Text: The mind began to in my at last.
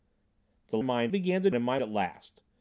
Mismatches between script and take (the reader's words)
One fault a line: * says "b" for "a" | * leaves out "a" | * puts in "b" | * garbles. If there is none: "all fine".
all fine